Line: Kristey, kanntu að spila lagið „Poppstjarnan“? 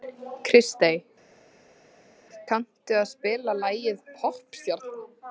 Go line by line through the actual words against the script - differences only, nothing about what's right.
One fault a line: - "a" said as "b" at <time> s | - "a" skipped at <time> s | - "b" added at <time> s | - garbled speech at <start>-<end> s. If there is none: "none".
none